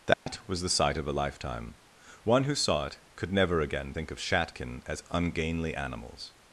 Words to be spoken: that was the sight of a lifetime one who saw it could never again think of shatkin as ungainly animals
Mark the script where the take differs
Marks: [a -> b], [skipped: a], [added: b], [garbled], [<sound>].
that [dropout] was the sight of a lifetime one who saw it could never again think of shatkin as ungainly animals